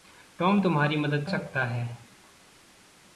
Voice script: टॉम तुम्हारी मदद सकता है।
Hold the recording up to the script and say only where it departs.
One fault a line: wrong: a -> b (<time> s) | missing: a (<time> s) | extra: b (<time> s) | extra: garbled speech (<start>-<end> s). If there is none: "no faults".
no faults